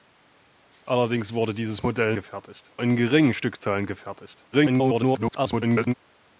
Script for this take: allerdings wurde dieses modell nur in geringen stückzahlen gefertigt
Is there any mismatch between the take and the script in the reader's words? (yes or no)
yes